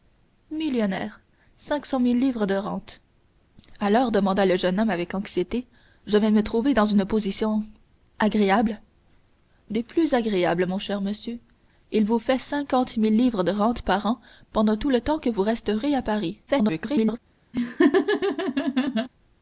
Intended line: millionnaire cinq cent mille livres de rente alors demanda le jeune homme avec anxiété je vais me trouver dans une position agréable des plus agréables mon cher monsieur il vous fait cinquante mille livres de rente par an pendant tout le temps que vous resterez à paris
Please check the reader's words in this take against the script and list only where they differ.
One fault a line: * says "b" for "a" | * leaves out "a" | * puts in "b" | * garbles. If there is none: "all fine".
* garbles